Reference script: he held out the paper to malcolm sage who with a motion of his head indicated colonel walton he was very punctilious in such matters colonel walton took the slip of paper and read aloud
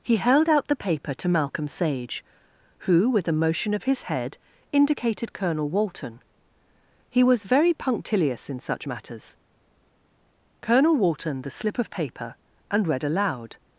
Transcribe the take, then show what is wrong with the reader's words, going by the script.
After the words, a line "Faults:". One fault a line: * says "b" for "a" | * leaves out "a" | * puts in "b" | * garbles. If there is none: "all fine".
he held out the paper to malcolm sage who with a motion of his head indicated colonel walton he was very punctilious in such matters colonel walton the slip of paper and read aloud
Faults:
* leaves out "took"